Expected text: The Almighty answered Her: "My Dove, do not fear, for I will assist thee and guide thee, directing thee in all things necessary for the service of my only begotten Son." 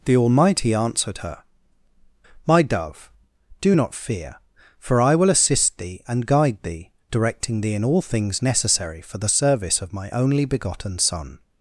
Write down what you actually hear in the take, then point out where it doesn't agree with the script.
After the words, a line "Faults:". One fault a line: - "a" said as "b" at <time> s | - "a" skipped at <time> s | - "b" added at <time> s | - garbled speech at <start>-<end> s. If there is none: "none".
The Almighty answered Her: "My Dove, do not fear, for I will assist thee and guide thee, directing thee in all things necessary for the service of my only begotten Son."
Faults:
none